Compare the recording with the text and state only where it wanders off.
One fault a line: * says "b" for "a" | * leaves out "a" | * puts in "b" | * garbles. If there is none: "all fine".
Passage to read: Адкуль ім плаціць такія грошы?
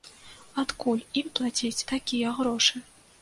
all fine